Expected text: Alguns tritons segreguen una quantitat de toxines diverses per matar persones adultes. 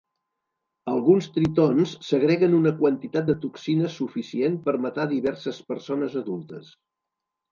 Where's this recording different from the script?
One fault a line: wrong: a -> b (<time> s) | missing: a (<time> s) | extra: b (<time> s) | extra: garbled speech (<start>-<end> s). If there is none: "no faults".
wrong: diverses -> suficient (4.0 s)
extra: diverses (5.1 s)